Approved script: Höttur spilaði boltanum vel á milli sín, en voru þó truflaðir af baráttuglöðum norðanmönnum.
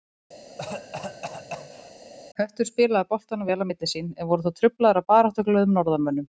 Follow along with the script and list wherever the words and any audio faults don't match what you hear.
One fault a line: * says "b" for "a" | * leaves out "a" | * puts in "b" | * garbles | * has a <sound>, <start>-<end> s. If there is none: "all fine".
* has a cough, 0.5-1.9 s